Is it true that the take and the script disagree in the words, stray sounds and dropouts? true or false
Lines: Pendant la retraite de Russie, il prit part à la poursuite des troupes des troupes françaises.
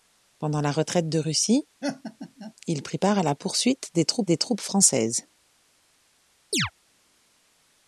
true